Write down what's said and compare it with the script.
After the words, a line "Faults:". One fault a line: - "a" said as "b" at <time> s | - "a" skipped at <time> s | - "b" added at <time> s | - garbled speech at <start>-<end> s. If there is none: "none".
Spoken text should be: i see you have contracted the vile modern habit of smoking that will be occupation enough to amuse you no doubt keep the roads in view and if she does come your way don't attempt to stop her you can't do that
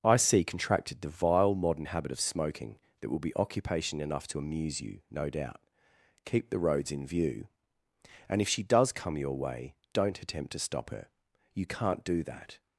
i see contracted the vile modern habit of smoking that will be occupation enough to amuse you no doubt keep the roads in view and if she does come your way don't attempt to stop her you can't do that
Faults:
- "you have" skipped at 0.4 s